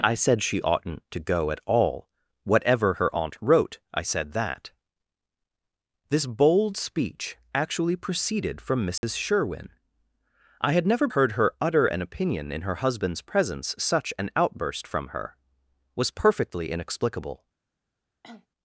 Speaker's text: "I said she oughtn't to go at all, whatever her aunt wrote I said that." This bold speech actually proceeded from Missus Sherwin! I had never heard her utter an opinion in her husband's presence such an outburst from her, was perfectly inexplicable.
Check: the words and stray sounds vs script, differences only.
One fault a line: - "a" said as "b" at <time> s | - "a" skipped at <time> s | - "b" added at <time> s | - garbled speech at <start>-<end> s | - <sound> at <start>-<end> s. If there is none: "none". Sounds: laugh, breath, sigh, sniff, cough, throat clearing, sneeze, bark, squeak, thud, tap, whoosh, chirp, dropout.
- dropout at 9.0-9.0 s
- cough at 18.2-18.5 s